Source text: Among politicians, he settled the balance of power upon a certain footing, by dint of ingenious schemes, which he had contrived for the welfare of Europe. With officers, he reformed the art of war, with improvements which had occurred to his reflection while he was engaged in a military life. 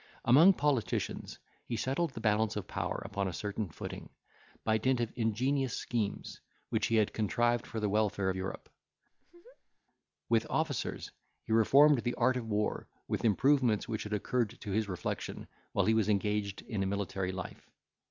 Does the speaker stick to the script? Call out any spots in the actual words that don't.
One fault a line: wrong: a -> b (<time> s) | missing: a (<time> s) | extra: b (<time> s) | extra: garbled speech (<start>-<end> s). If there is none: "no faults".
no faults